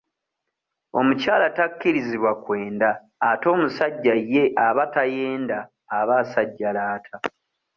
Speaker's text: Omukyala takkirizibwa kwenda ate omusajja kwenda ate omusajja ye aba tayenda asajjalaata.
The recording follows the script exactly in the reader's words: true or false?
false